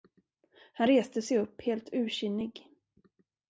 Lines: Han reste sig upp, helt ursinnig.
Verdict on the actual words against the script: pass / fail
pass